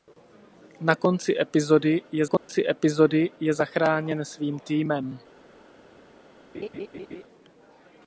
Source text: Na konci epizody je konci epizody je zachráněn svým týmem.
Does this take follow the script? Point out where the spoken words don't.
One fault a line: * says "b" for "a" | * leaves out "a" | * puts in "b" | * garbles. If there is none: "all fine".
all fine